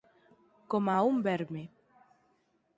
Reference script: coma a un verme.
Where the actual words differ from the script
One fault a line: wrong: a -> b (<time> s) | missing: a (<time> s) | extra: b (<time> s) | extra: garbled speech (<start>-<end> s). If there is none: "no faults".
no faults